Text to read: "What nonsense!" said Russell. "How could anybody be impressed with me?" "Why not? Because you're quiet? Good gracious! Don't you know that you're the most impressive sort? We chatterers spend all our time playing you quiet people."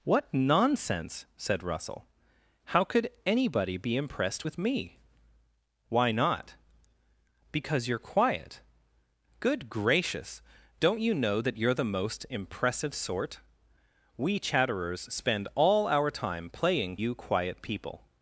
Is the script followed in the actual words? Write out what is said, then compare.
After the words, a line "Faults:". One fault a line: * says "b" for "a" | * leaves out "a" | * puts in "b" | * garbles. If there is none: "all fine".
"What nonsense!" said Russell. "How could anybody be impressed with me?" "Why not? Because you're quiet? Good gracious! Don't you know that you're the most impressive sort? We chatterers spend all our time playing you quiet people."
Faults:
all fine